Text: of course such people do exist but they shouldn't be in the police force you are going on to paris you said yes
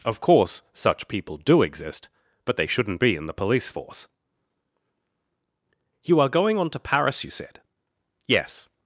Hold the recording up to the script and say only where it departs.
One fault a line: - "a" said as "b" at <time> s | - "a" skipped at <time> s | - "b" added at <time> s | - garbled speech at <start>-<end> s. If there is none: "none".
none